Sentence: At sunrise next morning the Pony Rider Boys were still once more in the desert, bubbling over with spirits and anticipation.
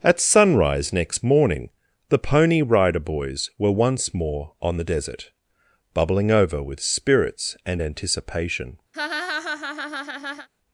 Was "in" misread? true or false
true